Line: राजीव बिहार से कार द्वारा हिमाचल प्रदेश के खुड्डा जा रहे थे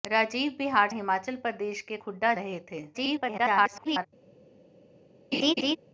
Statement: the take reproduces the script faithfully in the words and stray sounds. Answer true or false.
false